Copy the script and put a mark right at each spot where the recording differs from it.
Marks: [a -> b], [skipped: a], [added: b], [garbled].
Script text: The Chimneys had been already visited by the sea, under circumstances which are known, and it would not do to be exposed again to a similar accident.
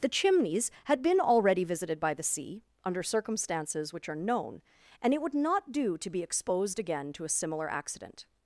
The Chimneys had been already visited by the sea, under circumstances which are known, and it would not do to be exposed again to a similar accident.